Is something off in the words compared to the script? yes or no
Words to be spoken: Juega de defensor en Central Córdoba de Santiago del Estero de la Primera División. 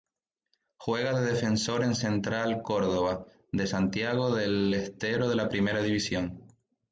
no